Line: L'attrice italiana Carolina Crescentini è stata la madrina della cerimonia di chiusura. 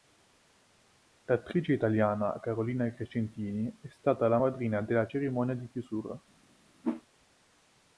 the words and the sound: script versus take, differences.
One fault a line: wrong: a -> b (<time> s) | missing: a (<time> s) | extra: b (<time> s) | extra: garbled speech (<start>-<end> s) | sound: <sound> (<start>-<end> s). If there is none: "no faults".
sound: whoosh (6.8-7.0 s)